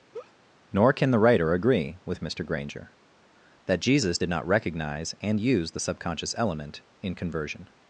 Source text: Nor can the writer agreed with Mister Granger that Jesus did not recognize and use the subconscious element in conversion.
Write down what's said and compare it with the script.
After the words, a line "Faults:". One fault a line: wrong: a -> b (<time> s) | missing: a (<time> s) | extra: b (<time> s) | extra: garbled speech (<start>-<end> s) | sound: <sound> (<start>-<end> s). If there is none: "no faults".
Nor can the writer agree with Mister Granger that Jesus did not recognize and use the subconscious element in conversion.
Faults:
sound: laugh (0.1-0.3 s)
wrong: agreed -> agree (1.5 s)